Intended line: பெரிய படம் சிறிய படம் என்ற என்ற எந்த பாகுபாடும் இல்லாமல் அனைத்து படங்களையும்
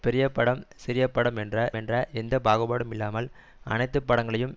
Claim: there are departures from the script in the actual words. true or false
false